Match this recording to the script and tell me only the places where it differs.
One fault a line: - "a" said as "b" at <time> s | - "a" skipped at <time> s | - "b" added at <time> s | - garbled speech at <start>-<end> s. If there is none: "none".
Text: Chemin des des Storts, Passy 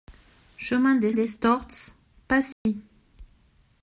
none